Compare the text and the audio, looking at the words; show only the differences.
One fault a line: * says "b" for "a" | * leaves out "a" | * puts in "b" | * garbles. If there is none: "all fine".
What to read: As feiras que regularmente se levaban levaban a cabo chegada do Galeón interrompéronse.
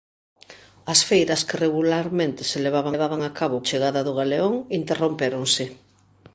all fine